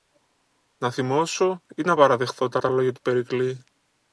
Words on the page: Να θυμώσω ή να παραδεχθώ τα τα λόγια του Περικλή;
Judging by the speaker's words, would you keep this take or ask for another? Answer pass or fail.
pass